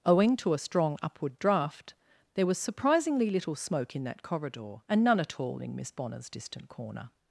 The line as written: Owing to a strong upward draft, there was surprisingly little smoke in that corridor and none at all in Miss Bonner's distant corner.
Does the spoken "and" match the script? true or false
true